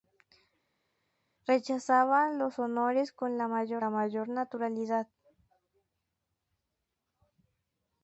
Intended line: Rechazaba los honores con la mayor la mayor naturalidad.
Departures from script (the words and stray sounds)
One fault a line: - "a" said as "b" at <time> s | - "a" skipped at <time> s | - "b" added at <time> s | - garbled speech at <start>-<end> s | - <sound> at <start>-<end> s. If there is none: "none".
none